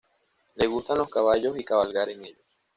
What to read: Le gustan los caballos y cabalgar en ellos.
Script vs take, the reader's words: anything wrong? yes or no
no